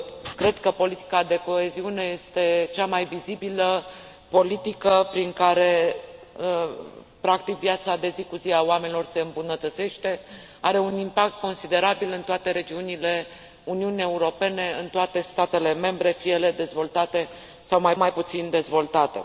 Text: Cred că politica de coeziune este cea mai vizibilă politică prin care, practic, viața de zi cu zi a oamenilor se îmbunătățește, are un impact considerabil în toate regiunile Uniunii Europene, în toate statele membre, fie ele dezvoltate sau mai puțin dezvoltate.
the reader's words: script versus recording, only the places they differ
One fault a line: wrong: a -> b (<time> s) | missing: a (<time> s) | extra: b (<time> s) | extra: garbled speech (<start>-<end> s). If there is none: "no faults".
extra: mai (18.0 s)